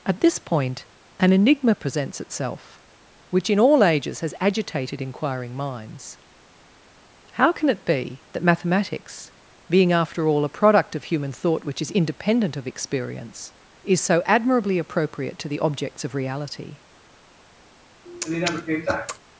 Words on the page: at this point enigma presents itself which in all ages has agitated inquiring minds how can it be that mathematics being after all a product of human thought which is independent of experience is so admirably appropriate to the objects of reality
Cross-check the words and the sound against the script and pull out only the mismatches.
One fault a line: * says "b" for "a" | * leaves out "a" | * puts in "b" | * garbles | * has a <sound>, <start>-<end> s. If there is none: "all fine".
* puts in "an"
* has a sniff, 18.1-19.2 s